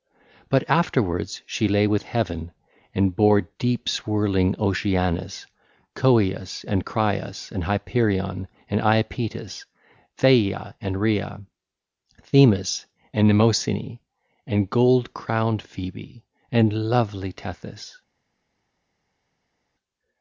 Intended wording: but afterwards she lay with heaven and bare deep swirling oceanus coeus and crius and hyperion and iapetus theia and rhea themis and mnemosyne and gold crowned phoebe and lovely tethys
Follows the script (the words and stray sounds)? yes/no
yes